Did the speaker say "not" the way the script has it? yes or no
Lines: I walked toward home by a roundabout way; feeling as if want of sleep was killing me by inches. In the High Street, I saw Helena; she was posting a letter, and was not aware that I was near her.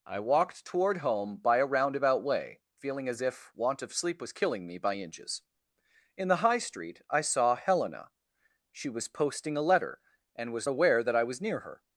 no